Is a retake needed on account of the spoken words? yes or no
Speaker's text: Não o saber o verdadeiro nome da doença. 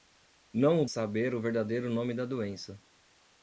no